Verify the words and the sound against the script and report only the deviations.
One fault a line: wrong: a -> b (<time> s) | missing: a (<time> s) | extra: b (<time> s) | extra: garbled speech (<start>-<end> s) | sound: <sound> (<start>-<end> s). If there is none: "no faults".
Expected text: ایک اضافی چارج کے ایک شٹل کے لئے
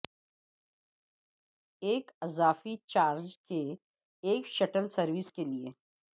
extra: سروس (4.9 s)